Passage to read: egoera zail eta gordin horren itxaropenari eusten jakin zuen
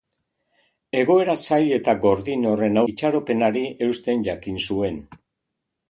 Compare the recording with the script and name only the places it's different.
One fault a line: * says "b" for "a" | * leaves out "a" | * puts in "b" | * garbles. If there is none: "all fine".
all fine